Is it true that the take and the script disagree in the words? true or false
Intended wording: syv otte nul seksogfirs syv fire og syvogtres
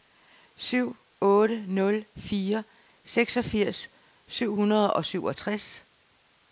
true